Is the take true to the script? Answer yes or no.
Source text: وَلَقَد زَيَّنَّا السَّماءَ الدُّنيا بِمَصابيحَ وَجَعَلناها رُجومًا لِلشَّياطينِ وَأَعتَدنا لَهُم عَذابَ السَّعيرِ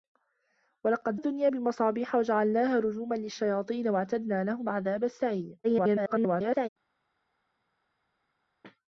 no